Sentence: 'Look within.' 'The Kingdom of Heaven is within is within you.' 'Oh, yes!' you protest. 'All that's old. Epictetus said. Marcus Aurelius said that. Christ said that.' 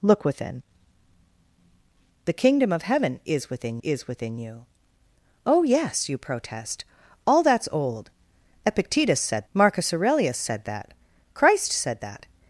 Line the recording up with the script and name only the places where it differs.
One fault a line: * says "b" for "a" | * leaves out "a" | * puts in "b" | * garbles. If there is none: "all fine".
all fine